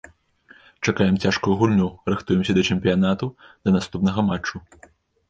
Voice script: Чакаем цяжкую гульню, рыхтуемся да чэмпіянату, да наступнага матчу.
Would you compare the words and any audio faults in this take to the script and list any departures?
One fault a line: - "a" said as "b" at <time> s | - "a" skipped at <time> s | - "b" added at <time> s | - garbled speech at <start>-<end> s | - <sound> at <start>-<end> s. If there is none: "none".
none